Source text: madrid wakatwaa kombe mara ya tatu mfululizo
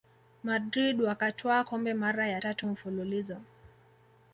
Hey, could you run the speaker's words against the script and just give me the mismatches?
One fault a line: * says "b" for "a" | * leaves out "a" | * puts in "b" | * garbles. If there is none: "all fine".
all fine